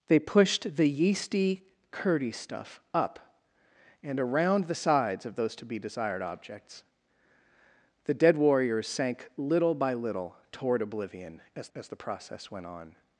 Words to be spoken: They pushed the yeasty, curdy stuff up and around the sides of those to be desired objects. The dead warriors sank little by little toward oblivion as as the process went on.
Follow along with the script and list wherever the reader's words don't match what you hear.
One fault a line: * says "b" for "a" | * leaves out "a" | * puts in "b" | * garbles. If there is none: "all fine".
all fine